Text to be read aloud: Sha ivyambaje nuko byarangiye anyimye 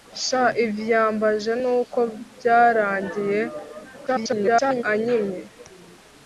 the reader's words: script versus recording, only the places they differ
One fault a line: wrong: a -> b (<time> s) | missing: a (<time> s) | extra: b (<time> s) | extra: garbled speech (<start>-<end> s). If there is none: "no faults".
extra: garbled speech (4.1-4.8 s)